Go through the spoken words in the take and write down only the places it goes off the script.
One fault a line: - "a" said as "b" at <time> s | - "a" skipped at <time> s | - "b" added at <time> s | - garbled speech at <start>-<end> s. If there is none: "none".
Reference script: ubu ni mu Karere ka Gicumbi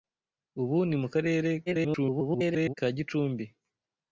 - garbled speech at 1.7-2.7 s